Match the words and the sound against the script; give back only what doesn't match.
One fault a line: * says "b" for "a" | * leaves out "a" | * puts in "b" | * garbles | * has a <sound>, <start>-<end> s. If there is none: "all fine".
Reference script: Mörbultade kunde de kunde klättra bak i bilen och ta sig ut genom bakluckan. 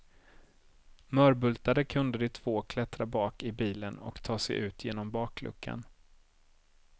* says "två" for "kunde"